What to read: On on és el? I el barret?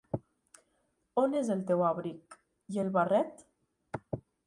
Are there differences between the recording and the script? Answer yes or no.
yes